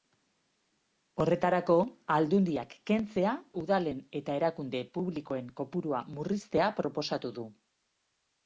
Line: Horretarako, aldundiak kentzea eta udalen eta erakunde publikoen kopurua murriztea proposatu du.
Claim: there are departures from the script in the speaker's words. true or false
true